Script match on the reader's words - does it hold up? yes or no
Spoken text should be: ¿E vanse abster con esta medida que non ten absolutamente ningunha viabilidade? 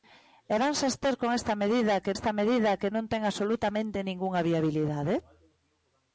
no